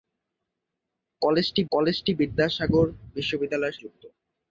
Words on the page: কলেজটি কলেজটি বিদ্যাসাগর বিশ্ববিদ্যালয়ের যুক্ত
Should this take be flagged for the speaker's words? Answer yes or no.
no